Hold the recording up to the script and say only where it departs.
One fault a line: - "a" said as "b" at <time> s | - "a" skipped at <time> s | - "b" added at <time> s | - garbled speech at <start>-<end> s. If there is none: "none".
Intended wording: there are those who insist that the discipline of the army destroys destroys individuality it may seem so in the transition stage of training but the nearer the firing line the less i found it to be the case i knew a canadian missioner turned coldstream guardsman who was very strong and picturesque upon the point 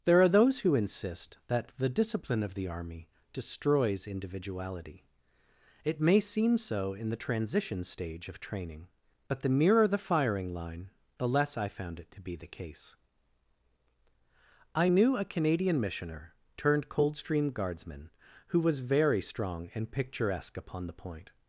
- "destroys" skipped at 4.1 s